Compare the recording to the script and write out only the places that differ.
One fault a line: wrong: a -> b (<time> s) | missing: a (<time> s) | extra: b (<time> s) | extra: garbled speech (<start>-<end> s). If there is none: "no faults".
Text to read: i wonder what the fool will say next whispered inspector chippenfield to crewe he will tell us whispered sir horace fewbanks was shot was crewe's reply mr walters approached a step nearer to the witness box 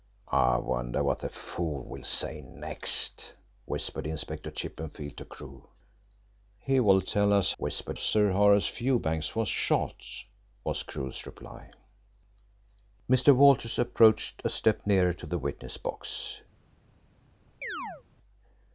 no faults